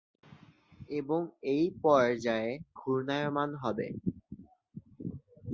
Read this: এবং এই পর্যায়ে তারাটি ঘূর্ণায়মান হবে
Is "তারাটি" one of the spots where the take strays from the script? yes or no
yes